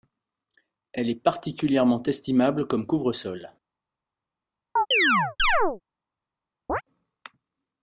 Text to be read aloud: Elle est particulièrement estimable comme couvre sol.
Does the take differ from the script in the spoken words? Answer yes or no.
no